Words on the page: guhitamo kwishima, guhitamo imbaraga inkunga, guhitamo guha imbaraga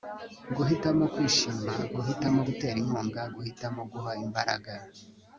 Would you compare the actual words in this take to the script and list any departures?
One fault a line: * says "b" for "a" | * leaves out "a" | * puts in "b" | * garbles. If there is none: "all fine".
* says "gutera" for "imbaraga"